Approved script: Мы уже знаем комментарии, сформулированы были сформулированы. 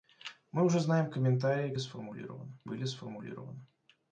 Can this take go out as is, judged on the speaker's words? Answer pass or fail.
pass